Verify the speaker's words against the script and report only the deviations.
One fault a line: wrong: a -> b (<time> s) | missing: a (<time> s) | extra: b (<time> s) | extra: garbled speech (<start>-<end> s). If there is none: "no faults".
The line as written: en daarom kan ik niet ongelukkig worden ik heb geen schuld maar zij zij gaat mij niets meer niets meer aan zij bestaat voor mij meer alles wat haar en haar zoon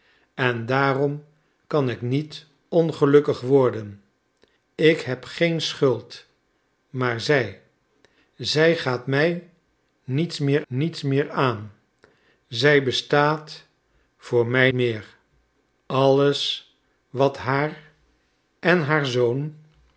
no faults